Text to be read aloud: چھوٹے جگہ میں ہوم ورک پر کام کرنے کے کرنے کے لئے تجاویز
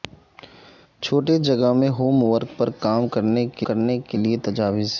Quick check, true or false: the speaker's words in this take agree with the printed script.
true